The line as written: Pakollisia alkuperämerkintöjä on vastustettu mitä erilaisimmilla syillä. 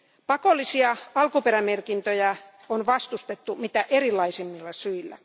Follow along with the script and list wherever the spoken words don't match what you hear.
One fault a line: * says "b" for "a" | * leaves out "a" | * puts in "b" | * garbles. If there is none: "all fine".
all fine